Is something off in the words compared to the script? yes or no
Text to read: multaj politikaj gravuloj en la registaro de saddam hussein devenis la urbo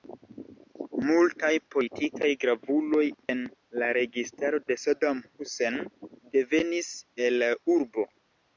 yes